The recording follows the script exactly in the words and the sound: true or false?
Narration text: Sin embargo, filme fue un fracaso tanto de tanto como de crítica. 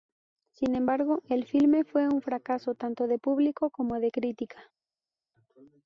false